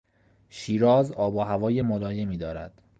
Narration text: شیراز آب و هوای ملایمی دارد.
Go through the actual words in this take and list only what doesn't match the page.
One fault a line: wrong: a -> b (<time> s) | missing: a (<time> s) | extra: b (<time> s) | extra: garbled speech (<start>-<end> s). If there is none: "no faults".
no faults